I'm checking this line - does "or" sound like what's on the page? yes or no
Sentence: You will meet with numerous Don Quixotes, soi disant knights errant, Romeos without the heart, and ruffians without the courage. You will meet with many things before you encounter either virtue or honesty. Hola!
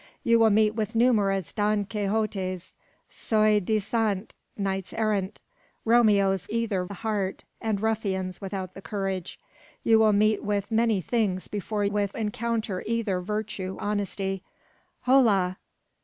no